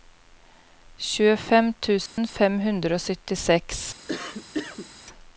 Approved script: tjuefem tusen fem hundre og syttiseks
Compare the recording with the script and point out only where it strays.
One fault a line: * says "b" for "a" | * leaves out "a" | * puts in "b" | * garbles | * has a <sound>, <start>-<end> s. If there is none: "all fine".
* has a dropout, 2.1-2.2 s
* has a cough, 4.1-4.9 s